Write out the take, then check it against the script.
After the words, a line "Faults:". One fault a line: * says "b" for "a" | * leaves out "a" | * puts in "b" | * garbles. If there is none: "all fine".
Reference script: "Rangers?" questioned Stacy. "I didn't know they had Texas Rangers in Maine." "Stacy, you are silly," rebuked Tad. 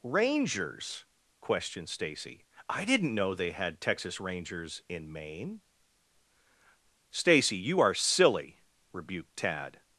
"Rangers?" questioned Stacy. "I didn't know they had Texas Rangers in Maine." "Stacy, you are silly," rebuked Tad.
Faults:
all fine